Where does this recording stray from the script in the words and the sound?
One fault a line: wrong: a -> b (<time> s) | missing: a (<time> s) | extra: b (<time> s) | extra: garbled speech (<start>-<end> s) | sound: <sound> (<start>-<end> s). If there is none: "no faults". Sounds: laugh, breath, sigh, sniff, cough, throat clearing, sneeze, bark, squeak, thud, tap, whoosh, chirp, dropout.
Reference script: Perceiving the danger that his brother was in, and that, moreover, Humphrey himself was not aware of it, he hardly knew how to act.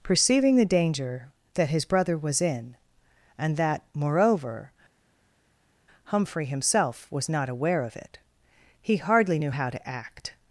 no faults